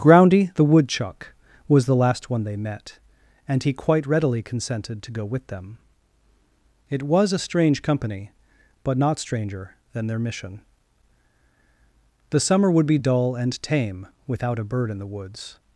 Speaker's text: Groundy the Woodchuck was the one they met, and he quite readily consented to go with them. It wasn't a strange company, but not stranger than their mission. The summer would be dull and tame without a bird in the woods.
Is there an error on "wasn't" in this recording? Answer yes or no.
yes